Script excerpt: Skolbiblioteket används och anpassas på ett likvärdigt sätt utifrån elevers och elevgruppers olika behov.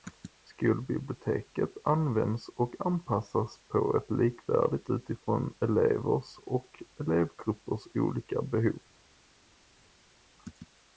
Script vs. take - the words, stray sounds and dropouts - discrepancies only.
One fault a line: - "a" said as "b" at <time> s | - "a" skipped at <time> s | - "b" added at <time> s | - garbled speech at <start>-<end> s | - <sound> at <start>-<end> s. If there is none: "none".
- "sätt" skipped at 4.9 s